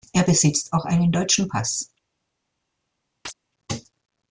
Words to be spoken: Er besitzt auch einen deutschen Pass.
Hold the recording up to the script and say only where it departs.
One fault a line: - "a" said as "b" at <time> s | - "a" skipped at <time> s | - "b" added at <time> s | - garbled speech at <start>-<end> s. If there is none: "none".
none